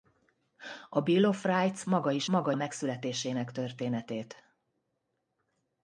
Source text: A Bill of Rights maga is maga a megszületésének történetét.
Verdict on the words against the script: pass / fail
pass